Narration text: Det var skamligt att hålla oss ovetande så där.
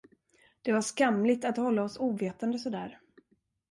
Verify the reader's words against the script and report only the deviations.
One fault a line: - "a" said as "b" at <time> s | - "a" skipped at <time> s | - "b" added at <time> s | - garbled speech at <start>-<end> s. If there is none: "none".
none